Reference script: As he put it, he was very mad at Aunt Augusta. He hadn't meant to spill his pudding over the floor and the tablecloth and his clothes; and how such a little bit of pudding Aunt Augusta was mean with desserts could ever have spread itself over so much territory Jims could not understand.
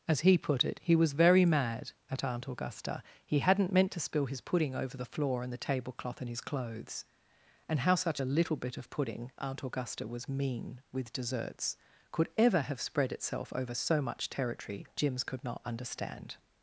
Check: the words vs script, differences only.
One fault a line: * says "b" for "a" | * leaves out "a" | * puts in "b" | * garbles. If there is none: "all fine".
all fine